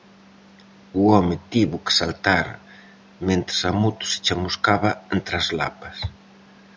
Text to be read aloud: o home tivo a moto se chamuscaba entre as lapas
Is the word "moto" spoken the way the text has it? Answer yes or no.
yes